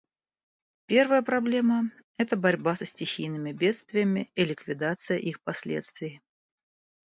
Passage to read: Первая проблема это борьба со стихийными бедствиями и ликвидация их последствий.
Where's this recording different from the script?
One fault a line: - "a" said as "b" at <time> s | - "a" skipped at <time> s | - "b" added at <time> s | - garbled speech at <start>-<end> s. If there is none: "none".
none